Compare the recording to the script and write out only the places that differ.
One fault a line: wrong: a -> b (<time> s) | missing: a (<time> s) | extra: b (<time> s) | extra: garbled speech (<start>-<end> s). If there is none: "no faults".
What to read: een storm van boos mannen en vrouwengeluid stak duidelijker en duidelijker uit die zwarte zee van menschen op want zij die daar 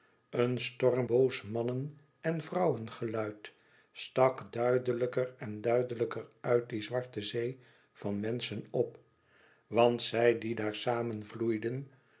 missing: van (1.1 s)